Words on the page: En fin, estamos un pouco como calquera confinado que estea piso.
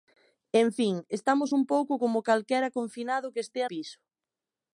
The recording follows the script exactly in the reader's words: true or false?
true